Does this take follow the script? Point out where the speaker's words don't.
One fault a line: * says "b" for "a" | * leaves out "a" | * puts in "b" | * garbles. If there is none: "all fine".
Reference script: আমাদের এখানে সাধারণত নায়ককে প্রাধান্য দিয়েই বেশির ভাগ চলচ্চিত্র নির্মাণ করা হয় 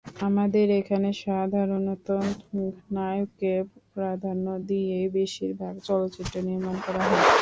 all fine